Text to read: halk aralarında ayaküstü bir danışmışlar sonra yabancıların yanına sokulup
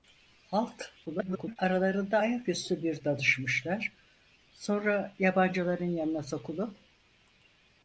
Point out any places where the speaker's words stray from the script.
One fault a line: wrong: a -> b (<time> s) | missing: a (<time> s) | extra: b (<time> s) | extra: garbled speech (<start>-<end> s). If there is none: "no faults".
extra: garbled speech (1.1-1.6 s)